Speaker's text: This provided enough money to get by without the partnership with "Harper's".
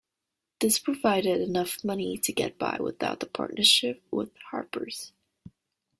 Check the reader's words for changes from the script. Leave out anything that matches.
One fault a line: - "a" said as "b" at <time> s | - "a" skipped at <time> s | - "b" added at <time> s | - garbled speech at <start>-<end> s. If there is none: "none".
none